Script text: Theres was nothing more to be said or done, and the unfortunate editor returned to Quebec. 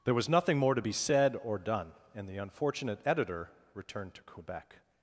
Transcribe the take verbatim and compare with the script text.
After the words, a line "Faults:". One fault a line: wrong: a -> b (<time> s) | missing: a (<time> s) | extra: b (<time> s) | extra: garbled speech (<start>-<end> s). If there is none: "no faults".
There was nothing more to be said or done, and the unfortunate editor returned to Quebec.
Faults:
wrong: Theres -> There (0.0 s)